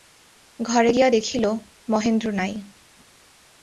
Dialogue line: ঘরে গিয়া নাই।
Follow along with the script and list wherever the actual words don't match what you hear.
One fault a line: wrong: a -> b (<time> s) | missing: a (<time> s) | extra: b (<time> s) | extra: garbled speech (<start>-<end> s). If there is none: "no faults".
extra: দেখিল মহেন্দ্র (1.1 s)